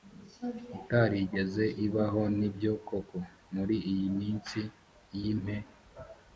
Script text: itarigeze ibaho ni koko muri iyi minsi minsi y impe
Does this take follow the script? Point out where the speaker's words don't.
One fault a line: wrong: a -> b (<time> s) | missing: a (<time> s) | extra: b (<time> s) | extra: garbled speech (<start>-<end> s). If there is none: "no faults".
extra: byo (2.5 s)
missing: minsi (4.6 s)